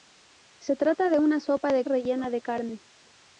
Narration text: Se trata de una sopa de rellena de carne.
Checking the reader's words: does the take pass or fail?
pass